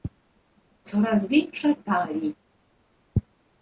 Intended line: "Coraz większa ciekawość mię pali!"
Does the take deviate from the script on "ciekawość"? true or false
true